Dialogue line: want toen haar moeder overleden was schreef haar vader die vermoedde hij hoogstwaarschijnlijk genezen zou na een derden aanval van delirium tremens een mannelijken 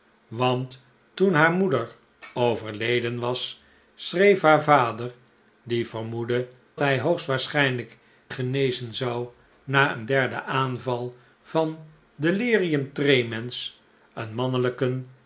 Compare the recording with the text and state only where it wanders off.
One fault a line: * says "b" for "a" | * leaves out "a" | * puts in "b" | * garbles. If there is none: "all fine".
all fine